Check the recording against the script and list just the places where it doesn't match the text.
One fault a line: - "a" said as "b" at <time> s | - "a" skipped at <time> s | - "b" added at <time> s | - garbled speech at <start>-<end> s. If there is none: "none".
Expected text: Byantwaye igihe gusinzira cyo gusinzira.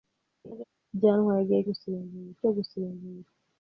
none